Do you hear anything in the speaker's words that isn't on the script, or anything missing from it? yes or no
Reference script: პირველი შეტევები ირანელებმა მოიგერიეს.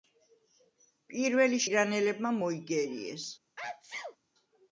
yes